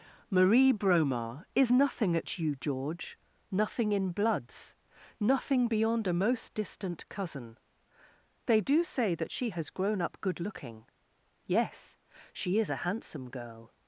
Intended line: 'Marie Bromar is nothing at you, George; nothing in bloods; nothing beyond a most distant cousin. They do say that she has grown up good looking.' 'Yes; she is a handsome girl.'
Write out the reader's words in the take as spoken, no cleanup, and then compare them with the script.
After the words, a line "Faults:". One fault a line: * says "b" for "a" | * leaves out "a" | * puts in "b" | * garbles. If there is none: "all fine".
'Marie Bromar is nothing at you, George; nothing in bloods; nothing beyond a most distant cousin. They do say that she has grown up good looking.' 'Yes; she is a handsome girl.'
Faults:
all fine